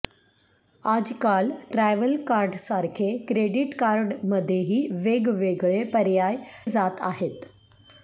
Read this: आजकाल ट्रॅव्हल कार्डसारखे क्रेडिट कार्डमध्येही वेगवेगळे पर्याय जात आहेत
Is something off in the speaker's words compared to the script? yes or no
no